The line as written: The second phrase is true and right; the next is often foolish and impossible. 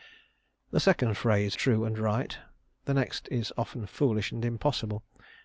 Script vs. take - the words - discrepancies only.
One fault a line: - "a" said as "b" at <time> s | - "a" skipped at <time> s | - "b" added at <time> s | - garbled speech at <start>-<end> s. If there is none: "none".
- "is" skipped at 1.6 s